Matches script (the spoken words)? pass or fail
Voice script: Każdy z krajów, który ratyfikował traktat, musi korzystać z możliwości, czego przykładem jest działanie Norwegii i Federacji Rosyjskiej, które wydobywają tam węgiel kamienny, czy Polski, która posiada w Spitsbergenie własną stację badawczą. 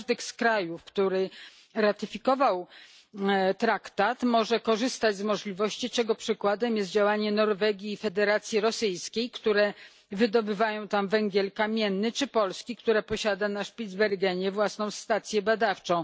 fail